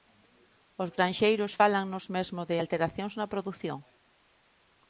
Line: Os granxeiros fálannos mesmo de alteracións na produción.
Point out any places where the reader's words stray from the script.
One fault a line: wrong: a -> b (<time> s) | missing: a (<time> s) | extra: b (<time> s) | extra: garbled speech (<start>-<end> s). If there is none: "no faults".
no faults